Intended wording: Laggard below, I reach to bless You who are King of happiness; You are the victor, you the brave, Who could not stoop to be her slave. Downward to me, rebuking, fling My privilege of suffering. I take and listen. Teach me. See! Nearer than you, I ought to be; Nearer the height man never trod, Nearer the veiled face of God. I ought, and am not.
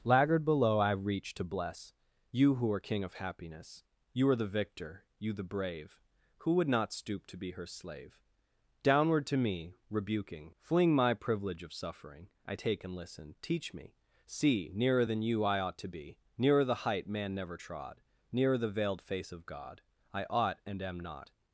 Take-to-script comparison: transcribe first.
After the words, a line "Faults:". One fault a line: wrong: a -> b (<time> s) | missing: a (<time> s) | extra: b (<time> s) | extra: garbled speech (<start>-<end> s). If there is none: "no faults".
Laggard below, I reach to bless You who are King of happiness; You are the victor, you the brave, Who would not stoop to be her slave. Downward to me, rebuking, fling My privilege of suffering. I take and listen. Teach me. See! Nearer than you, I ought to be; Nearer the height man never trod, Nearer the veiled face of God. I ought, and am not.
Faults:
wrong: could -> would (6.5 s)